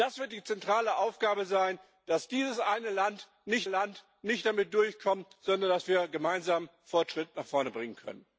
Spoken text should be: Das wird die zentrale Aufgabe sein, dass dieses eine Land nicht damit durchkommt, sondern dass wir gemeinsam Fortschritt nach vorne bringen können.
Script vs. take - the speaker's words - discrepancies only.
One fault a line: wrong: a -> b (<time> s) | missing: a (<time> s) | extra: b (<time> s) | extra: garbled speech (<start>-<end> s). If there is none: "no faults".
extra: Land nicht (3.6 s)